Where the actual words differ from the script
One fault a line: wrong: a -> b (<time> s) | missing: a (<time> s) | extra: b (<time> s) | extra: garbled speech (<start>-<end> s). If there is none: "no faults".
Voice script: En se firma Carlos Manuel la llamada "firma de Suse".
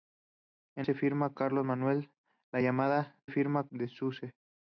no faults